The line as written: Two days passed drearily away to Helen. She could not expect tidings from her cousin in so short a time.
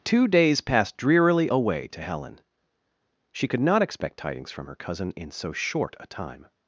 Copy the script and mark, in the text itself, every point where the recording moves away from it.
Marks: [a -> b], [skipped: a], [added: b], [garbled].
Two days passed drearily away to Helen. She could not expect tidings from her cousin in so short a time.